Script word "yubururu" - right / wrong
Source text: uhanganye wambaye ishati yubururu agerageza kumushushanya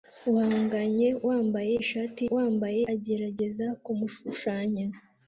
wrong